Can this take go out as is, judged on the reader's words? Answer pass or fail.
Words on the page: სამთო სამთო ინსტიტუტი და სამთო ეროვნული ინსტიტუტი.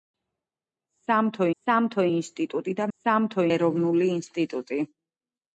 pass